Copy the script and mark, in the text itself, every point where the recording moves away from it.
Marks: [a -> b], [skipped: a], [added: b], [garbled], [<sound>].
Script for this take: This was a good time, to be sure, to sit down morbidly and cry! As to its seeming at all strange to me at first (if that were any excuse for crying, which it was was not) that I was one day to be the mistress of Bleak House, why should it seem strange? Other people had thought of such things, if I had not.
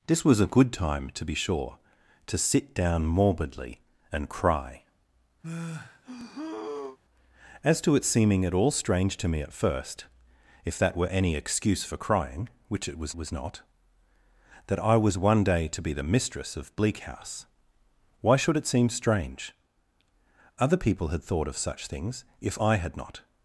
This was a good time, to be sure, to sit down morbidly and cry! [sigh] As to its seeming at all strange to me at first (if that were any excuse for crying, which it was was not) that I was one day to be the mistress of Bleak House, why should it seem strange? Other people had thought of such things, if I had not.